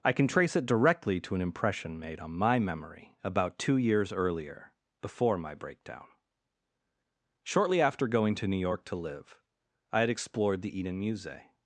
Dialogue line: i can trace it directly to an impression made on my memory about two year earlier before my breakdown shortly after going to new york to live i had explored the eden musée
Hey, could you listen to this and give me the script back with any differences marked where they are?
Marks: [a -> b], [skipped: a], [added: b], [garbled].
i can trace it directly to an impression made on my memory about two [year -> years] earlier before my breakdown shortly after going to new york to live i had explored the eden musée